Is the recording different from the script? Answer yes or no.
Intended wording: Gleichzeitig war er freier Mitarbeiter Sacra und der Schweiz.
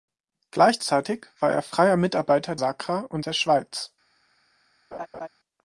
no